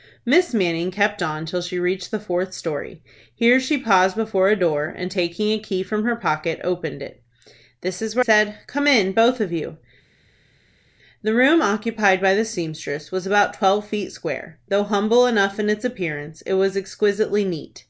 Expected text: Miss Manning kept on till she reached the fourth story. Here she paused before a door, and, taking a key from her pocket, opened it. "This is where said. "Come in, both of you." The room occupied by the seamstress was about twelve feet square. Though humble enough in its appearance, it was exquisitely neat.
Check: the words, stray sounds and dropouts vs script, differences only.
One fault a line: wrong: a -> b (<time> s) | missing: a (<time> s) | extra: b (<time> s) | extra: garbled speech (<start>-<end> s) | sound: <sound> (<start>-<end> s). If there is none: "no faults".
no faults